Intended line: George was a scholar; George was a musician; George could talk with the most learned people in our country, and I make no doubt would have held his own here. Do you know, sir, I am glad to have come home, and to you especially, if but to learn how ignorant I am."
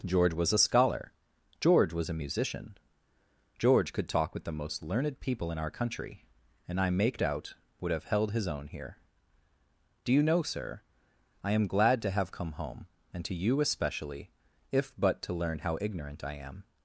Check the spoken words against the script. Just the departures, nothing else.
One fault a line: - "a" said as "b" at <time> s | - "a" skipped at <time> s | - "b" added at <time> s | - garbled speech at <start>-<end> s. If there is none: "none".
- "no" skipped at 7.2 s